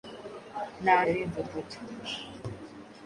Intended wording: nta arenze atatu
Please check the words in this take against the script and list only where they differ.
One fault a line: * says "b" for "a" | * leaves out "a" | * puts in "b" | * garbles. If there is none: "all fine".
all fine